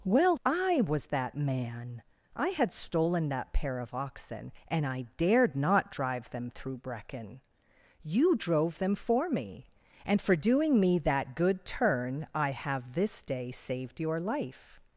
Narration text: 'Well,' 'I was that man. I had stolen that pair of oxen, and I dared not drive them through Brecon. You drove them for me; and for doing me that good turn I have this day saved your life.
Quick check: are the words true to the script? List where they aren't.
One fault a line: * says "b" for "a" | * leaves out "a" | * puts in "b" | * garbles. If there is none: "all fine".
all fine